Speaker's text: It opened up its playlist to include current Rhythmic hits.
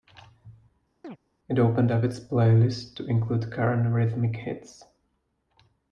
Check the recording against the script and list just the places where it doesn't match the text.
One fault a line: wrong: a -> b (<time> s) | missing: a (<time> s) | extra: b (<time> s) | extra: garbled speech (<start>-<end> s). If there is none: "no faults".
no faults